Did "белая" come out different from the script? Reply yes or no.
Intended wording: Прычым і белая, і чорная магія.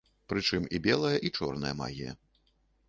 no